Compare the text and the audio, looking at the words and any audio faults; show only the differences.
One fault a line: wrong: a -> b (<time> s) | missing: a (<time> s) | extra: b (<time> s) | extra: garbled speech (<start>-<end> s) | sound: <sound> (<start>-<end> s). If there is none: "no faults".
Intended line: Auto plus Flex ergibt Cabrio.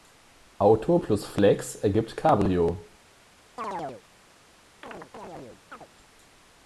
sound: chirp (3.6-4.0 s)
sound: chirp (4.8-5.9 s)